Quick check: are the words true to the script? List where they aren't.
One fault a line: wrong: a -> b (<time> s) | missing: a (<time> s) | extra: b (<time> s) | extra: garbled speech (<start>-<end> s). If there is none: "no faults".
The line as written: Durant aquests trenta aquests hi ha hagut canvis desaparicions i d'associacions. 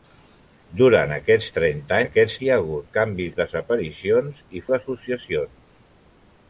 no faults